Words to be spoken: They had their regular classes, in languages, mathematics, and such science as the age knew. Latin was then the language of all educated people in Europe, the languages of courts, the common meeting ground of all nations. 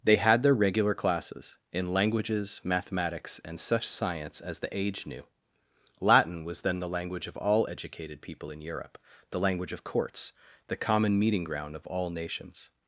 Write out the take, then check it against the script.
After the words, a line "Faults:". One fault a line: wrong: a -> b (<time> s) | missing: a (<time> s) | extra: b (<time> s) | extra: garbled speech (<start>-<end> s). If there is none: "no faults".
They had their regular classes, in languages, mathematics, and such science as the age knew. Latin was then the language of all educated people in Europe, the language of courts, the common meeting ground of all nations.
Faults:
wrong: languages -> language (9.4 s)